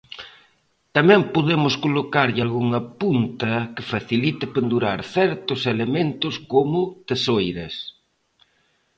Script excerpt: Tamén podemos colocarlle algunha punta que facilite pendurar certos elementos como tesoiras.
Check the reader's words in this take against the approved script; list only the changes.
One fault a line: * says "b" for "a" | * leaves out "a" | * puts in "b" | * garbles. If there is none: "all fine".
all fine